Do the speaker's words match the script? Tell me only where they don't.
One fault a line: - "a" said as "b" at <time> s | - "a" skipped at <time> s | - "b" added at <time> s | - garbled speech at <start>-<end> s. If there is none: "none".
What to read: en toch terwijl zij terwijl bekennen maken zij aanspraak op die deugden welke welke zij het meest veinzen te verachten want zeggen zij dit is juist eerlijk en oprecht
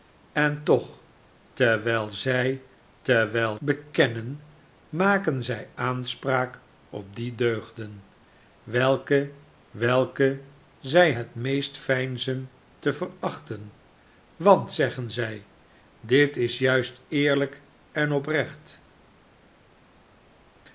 none